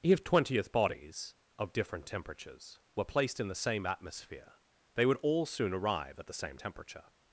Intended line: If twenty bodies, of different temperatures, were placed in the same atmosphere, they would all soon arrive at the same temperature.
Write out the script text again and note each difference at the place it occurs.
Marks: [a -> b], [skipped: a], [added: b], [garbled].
If [twenty -> twentieth] bodies, of different temperatures, were placed in the same atmosphere, they would all soon arrive at the same temperature.